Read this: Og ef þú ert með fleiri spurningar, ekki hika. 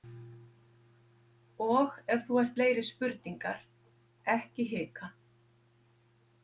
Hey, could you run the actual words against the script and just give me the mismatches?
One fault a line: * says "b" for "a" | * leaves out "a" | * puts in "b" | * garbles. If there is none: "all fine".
* leaves out "með"